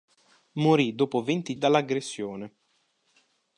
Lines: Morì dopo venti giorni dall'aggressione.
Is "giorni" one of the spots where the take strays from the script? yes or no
yes